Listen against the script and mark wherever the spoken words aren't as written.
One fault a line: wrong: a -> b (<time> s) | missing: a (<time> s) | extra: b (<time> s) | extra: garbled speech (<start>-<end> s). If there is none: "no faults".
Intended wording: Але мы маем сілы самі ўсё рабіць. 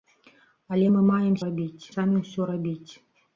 wrong: сілы -> рабіць (1.4 s)